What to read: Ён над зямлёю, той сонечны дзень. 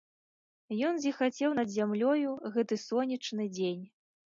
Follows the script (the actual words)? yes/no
no